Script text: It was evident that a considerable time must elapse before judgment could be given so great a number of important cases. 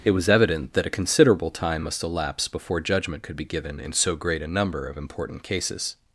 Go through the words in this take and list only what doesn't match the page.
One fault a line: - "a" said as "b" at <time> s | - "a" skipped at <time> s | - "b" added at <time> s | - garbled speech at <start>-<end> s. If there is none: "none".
- "in" added at 3.8 s